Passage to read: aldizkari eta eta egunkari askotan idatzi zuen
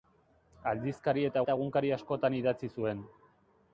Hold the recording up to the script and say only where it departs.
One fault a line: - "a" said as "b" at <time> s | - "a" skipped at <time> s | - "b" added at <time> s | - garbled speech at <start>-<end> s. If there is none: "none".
none